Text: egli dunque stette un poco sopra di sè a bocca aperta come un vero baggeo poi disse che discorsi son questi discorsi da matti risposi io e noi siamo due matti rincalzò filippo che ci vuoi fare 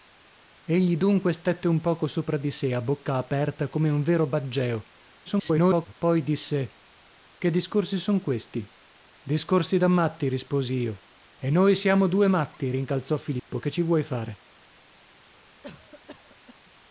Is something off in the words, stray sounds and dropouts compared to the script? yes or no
yes